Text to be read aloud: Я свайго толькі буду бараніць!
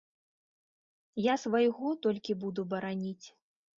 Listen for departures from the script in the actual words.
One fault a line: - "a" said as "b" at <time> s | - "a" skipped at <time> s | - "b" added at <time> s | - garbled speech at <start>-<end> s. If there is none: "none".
none